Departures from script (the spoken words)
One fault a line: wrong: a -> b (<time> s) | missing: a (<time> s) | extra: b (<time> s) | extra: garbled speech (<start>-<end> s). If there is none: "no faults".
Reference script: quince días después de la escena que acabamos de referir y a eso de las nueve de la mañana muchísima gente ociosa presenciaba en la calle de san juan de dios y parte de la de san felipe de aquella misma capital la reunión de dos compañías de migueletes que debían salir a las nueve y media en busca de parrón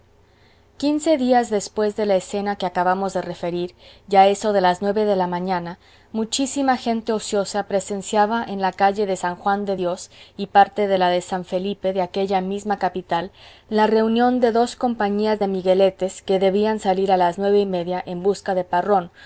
no faults